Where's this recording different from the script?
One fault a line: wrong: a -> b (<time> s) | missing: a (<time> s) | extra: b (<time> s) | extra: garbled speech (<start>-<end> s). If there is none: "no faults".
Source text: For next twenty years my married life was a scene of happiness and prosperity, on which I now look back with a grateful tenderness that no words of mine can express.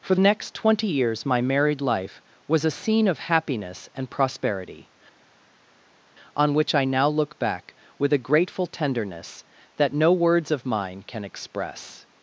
no faults